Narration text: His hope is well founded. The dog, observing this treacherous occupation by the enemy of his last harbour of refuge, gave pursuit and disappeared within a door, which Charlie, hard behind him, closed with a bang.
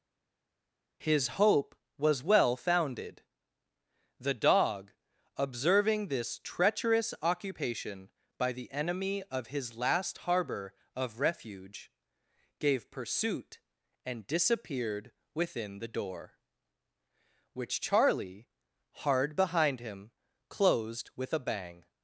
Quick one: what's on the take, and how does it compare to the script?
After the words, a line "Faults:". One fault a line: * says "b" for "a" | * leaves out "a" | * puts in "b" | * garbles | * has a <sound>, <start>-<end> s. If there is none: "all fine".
His hope was well founded. The dog, observing this treacherous occupation by the enemy of his last harbour of refuge, gave pursuit and disappeared within the door, which Charlie, hard behind him, closed with a bang.
Faults:
* says "was" for "is"
* says "the" for "a"